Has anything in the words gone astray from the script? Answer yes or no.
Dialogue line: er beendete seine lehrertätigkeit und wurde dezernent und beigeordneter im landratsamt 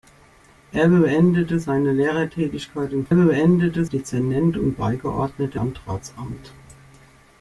yes